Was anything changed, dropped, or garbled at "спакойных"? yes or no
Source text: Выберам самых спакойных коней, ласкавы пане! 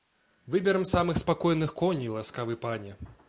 no